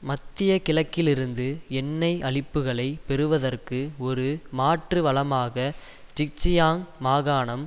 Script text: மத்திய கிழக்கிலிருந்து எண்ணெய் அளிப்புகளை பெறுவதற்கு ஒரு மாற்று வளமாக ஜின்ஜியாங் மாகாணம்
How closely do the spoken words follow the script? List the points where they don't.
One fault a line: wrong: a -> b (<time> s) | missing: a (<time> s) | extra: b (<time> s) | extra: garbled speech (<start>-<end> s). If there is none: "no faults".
no faults